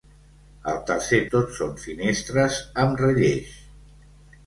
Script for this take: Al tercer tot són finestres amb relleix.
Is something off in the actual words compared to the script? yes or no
no